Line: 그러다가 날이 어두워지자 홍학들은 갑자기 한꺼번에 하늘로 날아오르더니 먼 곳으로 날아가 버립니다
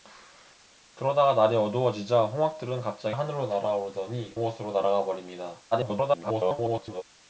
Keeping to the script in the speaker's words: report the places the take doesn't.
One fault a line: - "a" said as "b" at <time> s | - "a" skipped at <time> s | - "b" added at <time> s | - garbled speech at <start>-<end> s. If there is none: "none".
- "한꺼번에" skipped at 3.1 s
- "먼" skipped at 4.4 s
- garbled speech at 5.7-7.0 s